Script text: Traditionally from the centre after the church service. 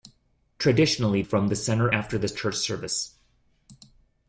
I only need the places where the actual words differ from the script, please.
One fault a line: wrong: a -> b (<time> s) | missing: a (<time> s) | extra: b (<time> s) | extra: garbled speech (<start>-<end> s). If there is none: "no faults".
no faults